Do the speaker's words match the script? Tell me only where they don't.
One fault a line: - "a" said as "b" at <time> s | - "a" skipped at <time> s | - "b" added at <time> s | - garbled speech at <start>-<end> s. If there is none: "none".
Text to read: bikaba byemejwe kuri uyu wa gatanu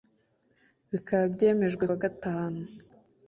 - "kuri uyu" skipped at 1.9 s